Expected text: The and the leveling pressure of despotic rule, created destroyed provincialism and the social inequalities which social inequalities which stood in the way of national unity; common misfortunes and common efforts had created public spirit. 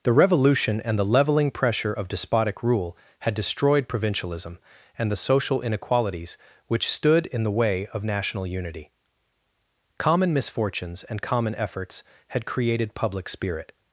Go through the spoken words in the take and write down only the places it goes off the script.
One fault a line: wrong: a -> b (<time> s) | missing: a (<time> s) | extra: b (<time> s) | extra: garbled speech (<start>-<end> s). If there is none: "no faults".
extra: revolution (0.1 s)
wrong: created -> had (3.2 s)
missing: social inequalities which (6.9 s)